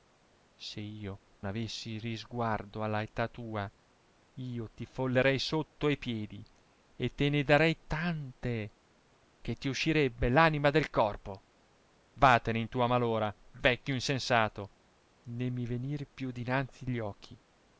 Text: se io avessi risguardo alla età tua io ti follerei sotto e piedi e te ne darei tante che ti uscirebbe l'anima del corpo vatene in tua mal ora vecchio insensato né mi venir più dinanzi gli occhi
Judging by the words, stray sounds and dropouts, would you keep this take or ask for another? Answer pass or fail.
pass